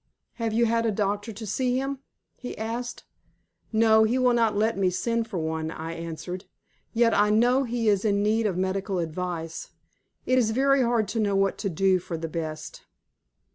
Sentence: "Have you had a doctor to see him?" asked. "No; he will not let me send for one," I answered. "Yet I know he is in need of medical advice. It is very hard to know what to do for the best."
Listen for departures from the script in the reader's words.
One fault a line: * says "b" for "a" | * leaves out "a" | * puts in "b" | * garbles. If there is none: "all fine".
* puts in "he"